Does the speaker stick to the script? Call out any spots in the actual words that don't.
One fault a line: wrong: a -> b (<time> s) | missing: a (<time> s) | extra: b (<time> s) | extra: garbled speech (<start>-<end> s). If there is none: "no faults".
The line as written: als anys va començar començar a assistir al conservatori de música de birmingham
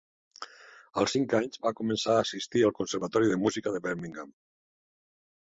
extra: cinc (1.1 s)
missing: començar (2.1 s)